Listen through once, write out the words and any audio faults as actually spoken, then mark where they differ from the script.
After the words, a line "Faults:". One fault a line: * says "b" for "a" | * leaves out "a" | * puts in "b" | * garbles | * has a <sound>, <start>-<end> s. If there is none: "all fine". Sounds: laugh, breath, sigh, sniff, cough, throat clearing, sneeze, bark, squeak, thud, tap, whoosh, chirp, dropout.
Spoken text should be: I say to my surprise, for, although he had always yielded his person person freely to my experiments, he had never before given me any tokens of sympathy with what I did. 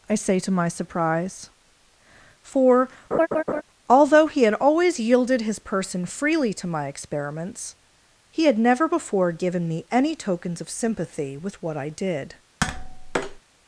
I say to my surprise, for, although he had always yielded his person freely to my experiments, he had never before given me any tokens of sympathy with what I did.
Faults:
* has a laugh, 3.1-3.6 s
* leaves out "person"
* has a tap, 12.6-13.4 s